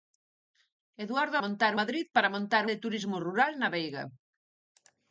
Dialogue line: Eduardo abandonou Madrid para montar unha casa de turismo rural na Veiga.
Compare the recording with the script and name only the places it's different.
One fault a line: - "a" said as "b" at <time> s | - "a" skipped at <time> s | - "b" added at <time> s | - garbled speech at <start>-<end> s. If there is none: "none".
- "abandonou" said as "montar" at 1.4 s
- "unha casa" skipped at 2.6 s